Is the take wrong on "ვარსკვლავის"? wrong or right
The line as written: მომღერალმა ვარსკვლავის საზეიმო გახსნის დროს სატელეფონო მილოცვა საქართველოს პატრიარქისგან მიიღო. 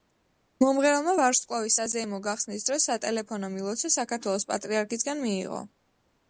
right